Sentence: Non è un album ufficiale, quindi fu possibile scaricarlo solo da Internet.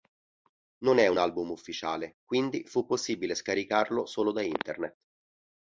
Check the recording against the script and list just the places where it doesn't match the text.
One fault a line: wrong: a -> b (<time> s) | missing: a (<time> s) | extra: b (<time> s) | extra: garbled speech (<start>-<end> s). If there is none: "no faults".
no faults